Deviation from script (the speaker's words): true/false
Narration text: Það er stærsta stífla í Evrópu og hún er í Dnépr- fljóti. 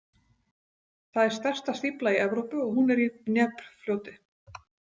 false